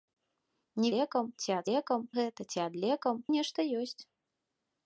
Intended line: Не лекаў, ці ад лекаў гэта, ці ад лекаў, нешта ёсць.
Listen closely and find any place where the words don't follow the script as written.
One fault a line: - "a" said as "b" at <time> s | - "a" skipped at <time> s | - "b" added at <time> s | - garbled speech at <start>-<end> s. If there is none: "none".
none